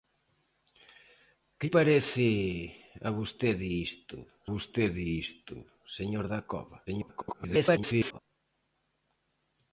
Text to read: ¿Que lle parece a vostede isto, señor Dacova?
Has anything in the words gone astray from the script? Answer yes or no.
yes